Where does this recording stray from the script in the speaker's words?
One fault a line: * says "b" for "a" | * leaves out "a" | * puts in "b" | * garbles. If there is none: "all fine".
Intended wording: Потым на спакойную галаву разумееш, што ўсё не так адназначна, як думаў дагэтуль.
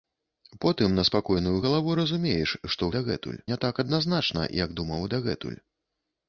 * says "дагэтуль" for "ўсё"